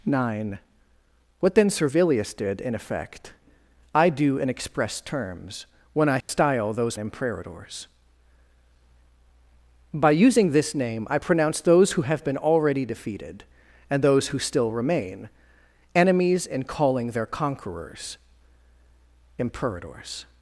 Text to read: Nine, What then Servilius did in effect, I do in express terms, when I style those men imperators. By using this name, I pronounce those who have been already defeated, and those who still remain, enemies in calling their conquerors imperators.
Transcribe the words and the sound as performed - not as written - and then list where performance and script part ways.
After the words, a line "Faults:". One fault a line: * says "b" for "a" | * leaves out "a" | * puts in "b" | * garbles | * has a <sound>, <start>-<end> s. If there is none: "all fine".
Nine, What then Servilius did in effect, I do in express terms, when I style those imperators. By using this name, I pronounce those who have been already defeated, and those who still remain, enemies in calling their conquerors imperators.
Faults:
* has a dropout, 6.2-6.3 s
* leaves out "men"